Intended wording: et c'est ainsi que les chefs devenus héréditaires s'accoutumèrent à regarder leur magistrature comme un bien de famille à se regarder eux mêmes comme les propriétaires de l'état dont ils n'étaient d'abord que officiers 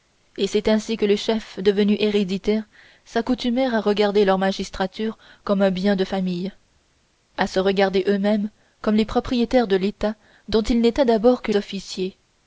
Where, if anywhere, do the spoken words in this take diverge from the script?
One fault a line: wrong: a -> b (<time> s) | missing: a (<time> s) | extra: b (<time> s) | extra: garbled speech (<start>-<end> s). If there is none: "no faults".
no faults